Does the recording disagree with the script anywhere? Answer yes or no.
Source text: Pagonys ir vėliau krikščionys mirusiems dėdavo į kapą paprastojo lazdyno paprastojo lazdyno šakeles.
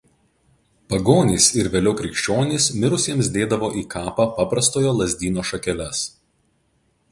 yes